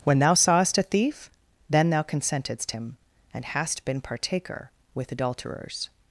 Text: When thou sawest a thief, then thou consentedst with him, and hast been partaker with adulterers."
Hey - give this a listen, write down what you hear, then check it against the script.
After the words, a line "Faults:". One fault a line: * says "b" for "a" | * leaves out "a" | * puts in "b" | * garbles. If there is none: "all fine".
When thou sawest a thief, then thou consentedst him, and hast been partaker with adulterers."
Faults:
* leaves out "with"